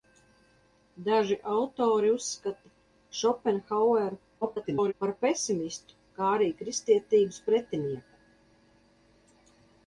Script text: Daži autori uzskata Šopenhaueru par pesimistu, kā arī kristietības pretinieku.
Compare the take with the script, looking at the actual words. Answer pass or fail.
fail